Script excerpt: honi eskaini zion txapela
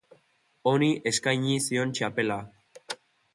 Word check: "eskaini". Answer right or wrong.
right